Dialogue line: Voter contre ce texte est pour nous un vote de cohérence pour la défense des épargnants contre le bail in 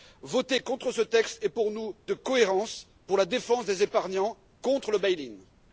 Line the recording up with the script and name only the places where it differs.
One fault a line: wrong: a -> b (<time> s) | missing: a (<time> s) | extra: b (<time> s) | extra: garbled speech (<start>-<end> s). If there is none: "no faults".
missing: un vote (1.9 s)